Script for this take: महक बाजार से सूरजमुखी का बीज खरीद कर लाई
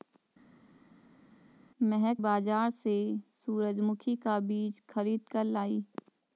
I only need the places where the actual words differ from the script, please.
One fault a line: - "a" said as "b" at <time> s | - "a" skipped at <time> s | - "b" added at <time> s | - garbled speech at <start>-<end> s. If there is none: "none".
none